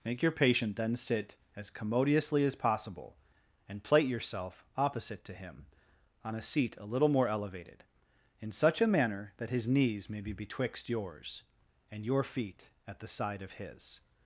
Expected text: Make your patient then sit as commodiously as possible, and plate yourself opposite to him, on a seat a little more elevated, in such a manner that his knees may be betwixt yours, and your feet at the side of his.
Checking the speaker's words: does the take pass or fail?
pass